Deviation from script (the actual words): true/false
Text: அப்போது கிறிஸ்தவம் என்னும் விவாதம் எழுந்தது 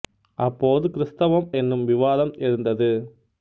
false